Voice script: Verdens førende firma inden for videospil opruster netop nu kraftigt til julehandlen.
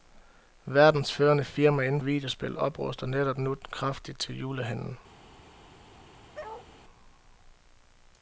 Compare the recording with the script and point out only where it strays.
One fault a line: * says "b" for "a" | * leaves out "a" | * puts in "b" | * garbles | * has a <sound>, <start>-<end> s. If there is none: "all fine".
* leaves out "for"
* has a bark, 6.3-6.7 s